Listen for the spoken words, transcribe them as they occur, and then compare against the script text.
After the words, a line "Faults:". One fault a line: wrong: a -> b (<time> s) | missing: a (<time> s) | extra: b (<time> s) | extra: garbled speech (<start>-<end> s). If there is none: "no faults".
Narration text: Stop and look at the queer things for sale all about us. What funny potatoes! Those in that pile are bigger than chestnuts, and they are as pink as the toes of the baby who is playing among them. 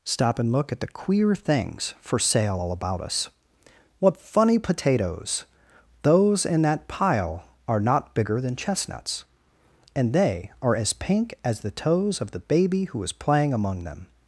Stop and look at the queer things for sale all about us. What funny potatoes! Those in that pile are not bigger than chestnuts, and they are as pink as the toes of the baby who is playing among them.
Faults:
extra: not (7.8 s)